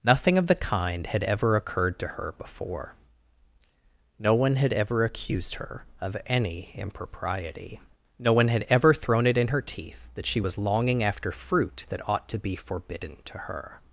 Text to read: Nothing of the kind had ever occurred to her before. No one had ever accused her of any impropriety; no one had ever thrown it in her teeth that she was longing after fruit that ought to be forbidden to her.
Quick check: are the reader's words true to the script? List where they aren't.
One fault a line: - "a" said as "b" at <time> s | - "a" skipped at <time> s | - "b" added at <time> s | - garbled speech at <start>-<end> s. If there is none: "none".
none